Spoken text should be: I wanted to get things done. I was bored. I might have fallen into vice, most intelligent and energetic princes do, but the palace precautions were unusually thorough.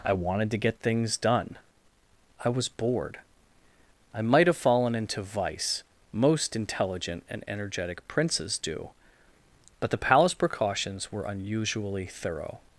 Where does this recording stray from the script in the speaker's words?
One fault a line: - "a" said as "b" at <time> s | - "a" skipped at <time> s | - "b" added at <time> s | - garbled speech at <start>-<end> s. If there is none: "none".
none